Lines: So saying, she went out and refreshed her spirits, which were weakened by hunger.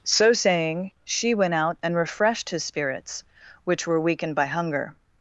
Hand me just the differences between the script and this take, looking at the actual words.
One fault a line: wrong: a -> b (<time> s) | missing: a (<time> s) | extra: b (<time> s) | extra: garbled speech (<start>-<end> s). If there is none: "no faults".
wrong: her -> his (2.5 s)